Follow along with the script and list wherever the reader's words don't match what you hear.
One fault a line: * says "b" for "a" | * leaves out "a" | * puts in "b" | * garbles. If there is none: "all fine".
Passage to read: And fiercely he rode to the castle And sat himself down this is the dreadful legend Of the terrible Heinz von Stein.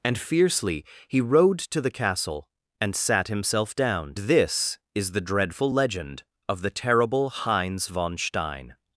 all fine